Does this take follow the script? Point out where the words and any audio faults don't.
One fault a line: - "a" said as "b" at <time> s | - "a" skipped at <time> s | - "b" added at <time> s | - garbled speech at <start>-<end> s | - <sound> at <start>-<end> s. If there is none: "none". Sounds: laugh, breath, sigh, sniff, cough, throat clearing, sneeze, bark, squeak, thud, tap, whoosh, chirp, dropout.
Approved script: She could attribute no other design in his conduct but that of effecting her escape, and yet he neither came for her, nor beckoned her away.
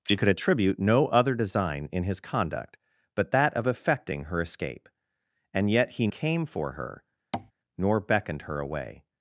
- "neither" skipped at 6.1 s
- tap at 7.3-7.5 s